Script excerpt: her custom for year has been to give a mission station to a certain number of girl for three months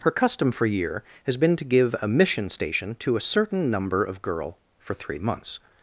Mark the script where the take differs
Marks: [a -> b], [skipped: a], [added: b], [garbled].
her custom for year has been to give a mission station to a certain number of girl for three months